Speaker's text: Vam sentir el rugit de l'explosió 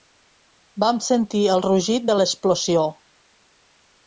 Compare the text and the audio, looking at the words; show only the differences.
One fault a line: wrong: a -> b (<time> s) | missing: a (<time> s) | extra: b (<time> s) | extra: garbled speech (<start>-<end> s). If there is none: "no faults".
no faults